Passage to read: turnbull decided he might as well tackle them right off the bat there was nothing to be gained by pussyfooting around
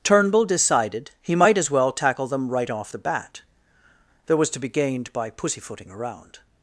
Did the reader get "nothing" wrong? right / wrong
wrong